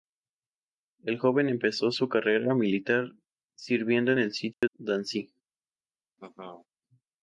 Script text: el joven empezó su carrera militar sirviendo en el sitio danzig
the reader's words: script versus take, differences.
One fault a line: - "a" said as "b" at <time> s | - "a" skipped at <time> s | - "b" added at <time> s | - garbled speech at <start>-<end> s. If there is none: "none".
none